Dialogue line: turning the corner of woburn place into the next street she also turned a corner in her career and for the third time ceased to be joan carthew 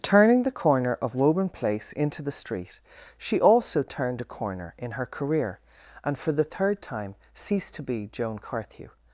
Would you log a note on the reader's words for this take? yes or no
yes